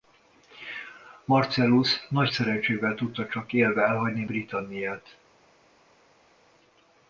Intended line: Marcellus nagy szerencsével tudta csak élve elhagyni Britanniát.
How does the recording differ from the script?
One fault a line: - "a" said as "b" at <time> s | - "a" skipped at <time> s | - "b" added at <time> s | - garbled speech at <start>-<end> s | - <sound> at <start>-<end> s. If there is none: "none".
none